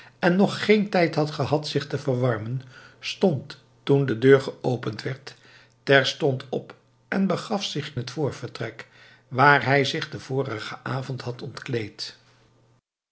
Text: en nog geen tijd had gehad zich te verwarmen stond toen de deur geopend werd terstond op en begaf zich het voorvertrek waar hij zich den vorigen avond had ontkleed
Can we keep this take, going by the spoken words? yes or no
yes